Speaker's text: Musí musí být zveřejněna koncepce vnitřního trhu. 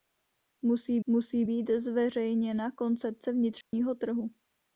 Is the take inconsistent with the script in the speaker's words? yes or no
no